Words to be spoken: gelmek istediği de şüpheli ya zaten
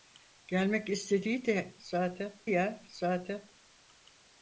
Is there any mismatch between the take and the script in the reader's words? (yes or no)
yes